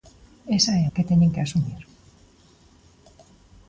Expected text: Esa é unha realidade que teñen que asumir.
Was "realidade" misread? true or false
true